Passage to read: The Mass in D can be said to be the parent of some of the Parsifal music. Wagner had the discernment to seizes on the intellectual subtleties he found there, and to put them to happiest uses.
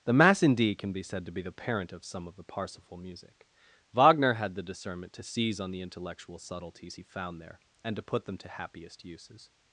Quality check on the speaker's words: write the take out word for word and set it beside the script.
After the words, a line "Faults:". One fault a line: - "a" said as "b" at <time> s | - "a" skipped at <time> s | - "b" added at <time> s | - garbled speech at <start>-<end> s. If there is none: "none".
The Mass in D can be said to be the parent of some of the Parsifal music. Wagner had the discernment to seize on the intellectual subtleties he found there, and to put them to happiest uses.
Faults:
- "seizes" said as "seize" at 5.2 s